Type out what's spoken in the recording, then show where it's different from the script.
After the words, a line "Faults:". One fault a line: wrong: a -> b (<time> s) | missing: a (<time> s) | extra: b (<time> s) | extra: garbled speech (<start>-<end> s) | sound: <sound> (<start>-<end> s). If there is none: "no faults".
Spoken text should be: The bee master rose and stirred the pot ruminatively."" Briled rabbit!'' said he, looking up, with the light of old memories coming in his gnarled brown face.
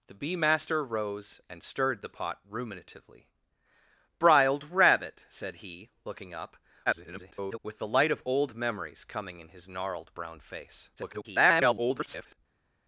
The bee master rose and stirred the pot ruminatively."" Briled rabbit!'' said he, looking up, [garbled] with the light of old memories coming in his gnarled brown face. [garbled]
Faults:
extra: garbled speech (6.9-7.6 s)
extra: garbled speech (11.0-12.4 s)